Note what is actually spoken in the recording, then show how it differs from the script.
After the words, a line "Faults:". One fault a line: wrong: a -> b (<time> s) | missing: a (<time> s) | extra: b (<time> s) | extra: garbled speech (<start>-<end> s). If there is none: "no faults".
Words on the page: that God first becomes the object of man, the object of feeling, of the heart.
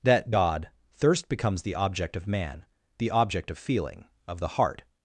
that God thirst becomes the object of man, the object of feeling, of the heart.
Faults:
wrong: first -> thirst (0.9 s)